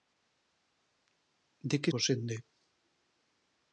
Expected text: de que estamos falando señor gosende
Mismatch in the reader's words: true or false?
true